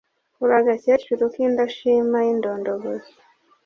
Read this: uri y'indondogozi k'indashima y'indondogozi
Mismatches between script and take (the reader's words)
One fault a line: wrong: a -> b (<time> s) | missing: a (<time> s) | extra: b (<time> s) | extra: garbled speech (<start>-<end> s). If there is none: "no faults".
wrong: y'indondogozi -> agakecuru (0.6 s)